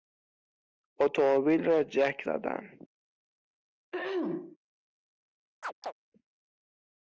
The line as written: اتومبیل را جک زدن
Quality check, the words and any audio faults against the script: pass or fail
fail